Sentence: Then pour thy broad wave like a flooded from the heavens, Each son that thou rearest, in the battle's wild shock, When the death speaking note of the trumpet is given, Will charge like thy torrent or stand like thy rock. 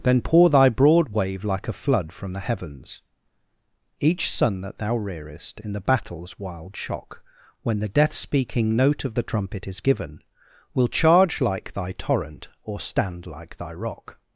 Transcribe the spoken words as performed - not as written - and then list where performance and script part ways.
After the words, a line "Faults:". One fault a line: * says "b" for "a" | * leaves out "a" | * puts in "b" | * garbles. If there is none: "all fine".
Then pour thy broad wave like a flood from the heavens, Each son that thou rearest, in the battle's wild shock, When the death speaking note of the trumpet is given, Will charge like thy torrent or stand like thy rock.
Faults:
* says "flood" for "flooded"